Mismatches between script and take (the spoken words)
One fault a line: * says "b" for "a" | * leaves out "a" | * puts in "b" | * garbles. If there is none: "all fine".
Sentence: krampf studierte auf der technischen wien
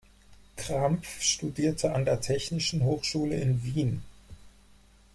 * says "an" for "auf"
* puts in "hochschule in"